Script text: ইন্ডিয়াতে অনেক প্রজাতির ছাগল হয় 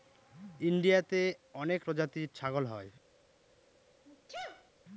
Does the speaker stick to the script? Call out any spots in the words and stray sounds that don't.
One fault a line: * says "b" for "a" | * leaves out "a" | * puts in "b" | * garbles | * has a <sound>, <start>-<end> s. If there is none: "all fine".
* has a sneeze, 4.1-4.7 s